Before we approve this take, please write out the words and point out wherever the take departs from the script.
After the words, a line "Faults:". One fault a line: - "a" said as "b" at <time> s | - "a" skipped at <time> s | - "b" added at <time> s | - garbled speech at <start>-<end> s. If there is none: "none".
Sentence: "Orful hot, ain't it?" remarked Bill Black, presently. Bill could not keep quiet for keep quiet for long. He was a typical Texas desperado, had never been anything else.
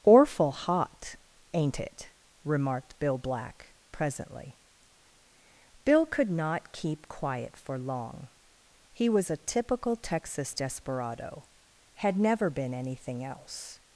"Orful hot, ain't it?" remarked Bill Black, presently. Bill could not keep quiet for long. He was a typical Texas desperado, had never been anything else.
Faults:
- "keep quiet for" skipped at 7.8 s